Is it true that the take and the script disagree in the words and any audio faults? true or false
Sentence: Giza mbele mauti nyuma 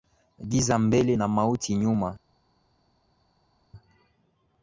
true